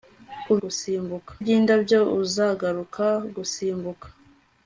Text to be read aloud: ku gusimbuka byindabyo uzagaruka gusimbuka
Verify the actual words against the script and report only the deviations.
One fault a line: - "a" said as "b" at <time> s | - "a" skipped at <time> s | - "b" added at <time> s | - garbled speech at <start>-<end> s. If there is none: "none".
none